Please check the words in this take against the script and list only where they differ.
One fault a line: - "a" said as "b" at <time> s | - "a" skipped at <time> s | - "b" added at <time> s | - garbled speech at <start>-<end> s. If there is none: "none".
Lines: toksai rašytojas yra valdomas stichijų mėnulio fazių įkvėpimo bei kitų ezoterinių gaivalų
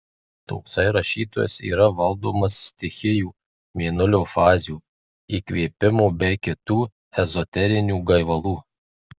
none